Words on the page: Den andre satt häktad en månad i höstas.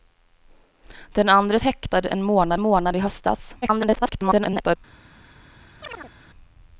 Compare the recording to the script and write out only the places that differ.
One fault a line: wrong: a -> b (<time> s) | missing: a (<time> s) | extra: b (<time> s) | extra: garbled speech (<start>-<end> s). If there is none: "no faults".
missing: satt (1.6 s)
extra: månad (2.6 s)
extra: garbled speech (3.6-4.8 s)